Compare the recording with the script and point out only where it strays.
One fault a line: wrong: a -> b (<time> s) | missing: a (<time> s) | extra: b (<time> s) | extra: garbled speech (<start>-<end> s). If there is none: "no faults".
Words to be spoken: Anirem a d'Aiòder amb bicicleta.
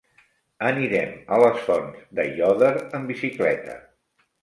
extra: les Fonts (1.4 s)